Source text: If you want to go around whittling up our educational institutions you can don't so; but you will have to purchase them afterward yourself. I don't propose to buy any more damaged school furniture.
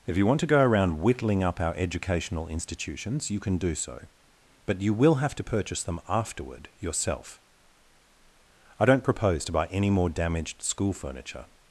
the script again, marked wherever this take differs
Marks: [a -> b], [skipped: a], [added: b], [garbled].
If you want to go around whittling up our educational institutions you can [don't -> do] so; but you will have to purchase them afterward yourself. I don't propose to buy any more damaged school furniture.